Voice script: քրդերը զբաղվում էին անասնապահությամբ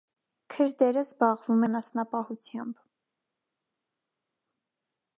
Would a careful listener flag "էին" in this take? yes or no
yes